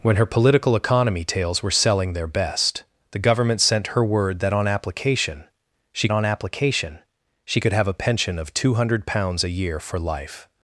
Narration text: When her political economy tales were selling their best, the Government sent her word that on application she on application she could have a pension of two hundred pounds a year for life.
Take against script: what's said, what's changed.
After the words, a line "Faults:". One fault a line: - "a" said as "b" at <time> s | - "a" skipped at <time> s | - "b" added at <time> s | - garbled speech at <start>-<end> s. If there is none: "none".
When her political economy tales were selling their best, the Government sent her word that on application she on application she could have a pension of two hundred pounds a year for life.
Faults:
none